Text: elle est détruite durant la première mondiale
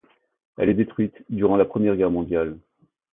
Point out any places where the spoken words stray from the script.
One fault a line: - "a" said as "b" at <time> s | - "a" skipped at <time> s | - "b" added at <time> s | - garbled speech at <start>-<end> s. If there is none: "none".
- "guerre" added at 2.0 s